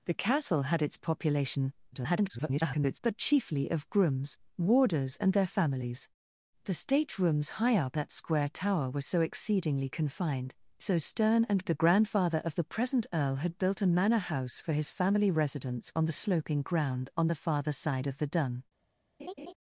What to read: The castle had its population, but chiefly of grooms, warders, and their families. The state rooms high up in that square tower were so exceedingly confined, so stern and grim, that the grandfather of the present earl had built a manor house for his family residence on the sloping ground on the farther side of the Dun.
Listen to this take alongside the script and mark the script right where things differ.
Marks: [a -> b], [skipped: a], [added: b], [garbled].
The castle had its population, [garbled] but chiefly of grooms, warders, and their families. The state rooms high up [skipped: in] that square tower were so exceedingly confined, so stern and [skipped: grim, that] the grandfather of the present earl had built a manor house for his family residence on the sloping ground on the farther side of the Dun.